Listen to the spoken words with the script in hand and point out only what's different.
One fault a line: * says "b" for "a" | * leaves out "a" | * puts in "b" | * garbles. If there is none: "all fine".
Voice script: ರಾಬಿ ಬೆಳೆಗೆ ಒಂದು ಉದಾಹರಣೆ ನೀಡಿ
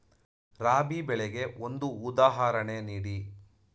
all fine